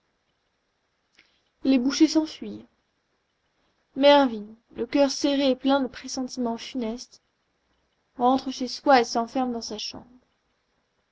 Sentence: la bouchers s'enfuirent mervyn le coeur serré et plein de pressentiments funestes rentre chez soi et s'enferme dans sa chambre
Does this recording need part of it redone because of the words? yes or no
yes